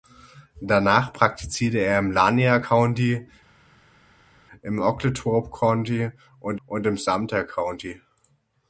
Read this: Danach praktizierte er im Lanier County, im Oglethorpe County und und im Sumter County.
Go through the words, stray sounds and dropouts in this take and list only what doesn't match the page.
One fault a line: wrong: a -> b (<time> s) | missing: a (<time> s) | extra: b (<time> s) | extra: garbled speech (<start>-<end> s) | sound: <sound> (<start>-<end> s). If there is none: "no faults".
no faults